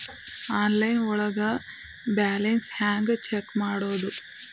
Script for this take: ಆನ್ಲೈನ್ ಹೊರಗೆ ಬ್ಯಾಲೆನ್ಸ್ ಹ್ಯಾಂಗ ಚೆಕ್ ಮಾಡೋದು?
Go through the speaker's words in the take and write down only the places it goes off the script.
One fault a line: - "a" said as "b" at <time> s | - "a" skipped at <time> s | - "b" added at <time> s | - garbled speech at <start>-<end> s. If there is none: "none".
- "ಹೊರಗೆ" said as "ಒಳಗೆ" at 1.1 s